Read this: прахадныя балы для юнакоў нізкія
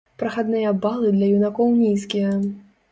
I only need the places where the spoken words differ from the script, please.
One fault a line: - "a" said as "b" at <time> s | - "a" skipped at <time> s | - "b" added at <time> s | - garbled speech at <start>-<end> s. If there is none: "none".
none